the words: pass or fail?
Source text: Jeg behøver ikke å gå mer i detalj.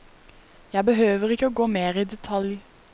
pass